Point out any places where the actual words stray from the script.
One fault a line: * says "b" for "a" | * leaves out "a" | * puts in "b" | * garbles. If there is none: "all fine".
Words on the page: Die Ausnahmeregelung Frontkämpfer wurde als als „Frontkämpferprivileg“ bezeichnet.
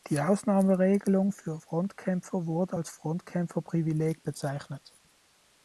* puts in "für"
* leaves out "als"